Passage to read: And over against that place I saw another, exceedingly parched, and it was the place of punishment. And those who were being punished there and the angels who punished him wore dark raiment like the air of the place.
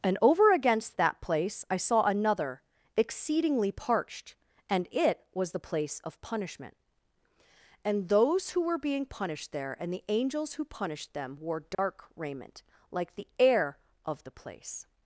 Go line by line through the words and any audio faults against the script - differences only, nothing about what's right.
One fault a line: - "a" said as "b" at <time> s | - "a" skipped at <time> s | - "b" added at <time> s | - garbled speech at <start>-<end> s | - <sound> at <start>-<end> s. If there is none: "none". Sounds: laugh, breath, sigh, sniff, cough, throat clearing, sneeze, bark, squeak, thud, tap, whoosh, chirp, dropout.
- "him" said as "them" at 11.1 s
- dropout at 11.7-11.8 s